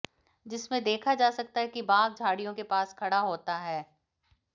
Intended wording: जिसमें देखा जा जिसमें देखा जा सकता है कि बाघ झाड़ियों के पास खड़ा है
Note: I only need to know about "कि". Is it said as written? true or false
true